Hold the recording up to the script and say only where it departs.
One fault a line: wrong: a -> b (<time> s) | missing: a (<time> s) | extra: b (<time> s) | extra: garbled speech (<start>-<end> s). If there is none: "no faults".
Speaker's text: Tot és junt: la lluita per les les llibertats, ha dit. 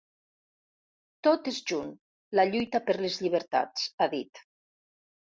missing: les (3.2 s)